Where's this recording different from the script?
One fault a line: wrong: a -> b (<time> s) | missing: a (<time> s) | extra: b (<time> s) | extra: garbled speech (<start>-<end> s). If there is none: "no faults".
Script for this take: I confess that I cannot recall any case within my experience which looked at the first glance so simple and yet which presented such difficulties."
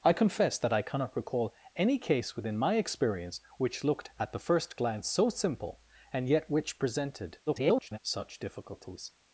extra: garbled speech (7.5-8.0 s)